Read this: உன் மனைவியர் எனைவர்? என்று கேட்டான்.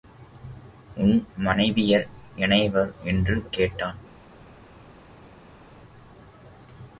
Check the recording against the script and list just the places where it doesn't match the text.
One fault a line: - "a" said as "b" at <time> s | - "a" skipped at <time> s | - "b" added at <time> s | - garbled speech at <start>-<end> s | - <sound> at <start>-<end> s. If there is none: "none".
none